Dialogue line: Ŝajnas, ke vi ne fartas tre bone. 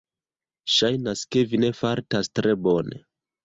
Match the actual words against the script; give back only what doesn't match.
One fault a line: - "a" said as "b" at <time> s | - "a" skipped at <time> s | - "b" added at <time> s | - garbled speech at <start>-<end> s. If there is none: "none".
none